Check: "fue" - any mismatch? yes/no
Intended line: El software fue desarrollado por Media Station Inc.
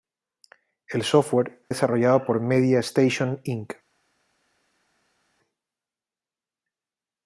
yes